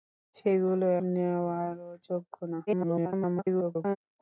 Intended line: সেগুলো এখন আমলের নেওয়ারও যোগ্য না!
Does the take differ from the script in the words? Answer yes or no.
yes